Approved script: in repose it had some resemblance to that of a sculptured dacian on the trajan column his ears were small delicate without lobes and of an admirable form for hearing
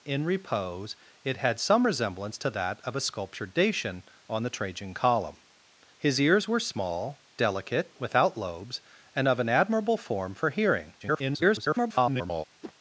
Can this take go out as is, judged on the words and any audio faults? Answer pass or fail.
fail